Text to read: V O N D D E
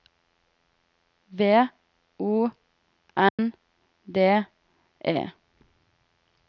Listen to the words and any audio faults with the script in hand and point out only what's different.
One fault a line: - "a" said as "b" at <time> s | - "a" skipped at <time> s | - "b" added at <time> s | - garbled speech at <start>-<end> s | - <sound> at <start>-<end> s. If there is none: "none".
- dropout at 3.3-3.4 s
- "D" skipped at 4.5 s